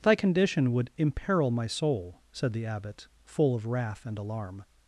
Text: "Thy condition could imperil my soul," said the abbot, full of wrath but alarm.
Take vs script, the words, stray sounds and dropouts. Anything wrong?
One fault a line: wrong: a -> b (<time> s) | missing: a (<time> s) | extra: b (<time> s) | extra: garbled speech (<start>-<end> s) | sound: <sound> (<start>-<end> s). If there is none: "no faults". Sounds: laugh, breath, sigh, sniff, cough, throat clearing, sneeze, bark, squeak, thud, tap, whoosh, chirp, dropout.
wrong: could -> would (0.7 s)
wrong: but -> and (4.0 s)